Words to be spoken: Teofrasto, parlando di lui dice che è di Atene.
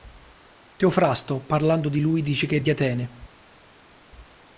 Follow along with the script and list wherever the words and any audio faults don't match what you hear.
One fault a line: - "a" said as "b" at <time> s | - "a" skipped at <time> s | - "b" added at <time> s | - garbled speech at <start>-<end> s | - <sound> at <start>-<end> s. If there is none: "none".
none